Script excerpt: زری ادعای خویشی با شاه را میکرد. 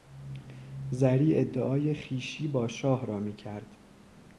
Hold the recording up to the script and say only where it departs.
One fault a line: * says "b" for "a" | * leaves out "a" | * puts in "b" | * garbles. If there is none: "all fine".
all fine